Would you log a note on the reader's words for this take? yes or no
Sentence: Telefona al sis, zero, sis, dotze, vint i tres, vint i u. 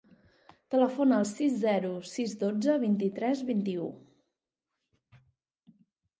no